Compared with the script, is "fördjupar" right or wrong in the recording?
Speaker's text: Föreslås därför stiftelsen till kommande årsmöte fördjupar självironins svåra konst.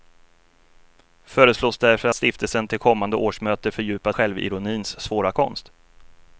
right